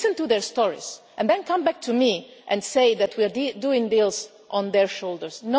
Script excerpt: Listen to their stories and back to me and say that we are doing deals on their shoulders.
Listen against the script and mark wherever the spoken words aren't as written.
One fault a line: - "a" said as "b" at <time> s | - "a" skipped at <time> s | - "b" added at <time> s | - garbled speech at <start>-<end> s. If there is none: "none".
- "then come" added at 1.3 s